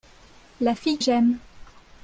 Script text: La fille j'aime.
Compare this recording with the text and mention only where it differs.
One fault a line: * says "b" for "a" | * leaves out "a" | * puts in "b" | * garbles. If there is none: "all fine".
all fine